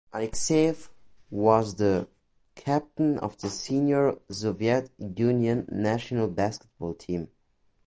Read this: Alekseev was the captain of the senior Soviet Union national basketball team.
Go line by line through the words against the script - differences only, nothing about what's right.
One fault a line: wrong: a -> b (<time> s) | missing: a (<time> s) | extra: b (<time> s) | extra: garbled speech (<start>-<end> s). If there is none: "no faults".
no faults